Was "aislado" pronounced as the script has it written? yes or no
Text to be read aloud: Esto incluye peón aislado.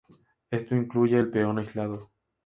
yes